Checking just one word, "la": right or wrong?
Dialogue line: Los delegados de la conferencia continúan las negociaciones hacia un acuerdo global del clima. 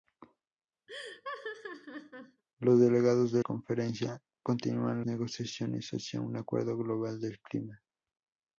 wrong